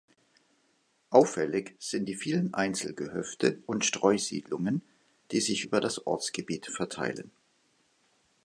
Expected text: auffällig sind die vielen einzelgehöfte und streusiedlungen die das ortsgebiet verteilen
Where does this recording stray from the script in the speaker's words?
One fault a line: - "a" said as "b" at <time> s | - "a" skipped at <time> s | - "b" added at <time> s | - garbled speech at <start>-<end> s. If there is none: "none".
- "sich über" added at 5.4 s